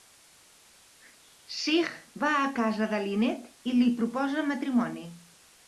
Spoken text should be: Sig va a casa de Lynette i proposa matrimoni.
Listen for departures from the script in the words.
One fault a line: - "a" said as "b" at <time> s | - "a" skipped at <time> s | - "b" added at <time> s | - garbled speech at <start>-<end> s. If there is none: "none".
- "li" added at 3.8 s